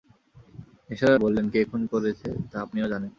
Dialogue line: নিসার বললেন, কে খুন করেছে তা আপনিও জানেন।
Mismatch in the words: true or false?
false